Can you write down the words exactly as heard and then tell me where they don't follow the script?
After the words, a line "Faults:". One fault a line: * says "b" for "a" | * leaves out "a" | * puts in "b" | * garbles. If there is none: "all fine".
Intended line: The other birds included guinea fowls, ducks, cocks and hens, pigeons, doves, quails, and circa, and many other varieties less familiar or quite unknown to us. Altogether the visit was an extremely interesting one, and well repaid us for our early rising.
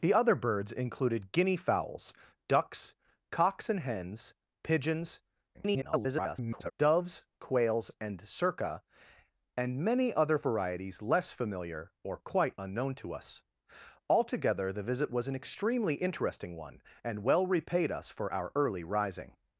The other birds included guinea fowls, ducks, cocks and hens, pigeons, [garbled] doves, quails, and circa, and many other varieties less familiar or quite unknown to us. Altogether the visit was an extremely interesting one, and well repaid us for our early rising.
Faults:
* garbles